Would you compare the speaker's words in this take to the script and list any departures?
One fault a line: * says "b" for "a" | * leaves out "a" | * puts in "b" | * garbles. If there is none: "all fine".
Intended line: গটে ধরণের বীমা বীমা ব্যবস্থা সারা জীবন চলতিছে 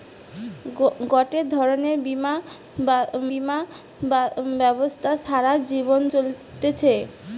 all fine